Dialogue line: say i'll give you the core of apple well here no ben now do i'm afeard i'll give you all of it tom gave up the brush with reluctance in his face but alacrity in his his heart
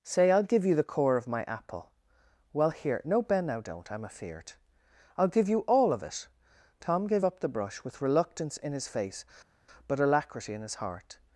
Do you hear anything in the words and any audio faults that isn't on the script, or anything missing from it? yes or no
yes